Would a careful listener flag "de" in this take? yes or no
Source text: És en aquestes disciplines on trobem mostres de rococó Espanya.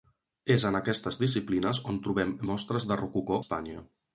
no